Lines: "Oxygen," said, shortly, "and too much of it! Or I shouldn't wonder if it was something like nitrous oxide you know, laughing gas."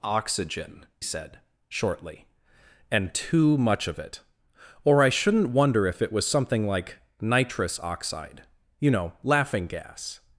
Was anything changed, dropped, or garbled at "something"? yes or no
no